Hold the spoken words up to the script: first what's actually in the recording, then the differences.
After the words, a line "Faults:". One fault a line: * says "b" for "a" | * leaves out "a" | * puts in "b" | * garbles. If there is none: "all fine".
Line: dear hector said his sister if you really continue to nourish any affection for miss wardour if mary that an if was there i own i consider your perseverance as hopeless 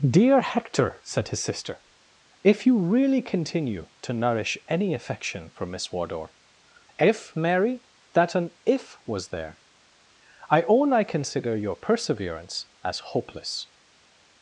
dear hector said his sister if you really continue to nourish any affection for miss wardour if mary that an if was there i own i consider your perseverance as hopeless
Faults:
all fine